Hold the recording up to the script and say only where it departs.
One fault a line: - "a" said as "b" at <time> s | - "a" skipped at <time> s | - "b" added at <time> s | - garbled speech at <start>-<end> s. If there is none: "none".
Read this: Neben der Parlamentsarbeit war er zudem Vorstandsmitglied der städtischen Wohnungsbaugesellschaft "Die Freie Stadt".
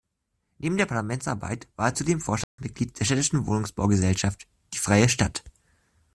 none